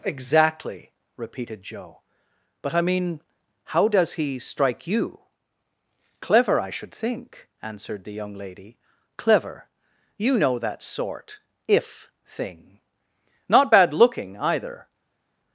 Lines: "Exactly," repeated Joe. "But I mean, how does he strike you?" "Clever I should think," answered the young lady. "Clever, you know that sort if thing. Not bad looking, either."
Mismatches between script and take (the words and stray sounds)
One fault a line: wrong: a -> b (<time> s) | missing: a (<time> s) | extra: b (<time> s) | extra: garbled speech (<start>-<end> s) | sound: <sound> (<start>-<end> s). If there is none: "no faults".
no faults